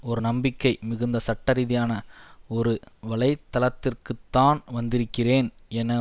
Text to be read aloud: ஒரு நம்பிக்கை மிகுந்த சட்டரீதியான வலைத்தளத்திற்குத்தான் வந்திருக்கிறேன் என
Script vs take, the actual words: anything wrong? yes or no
yes